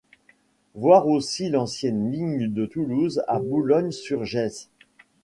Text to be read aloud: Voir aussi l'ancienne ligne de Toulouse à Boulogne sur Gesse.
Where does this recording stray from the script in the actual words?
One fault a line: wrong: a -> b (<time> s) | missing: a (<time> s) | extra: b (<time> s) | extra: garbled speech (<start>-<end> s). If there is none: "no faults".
no faults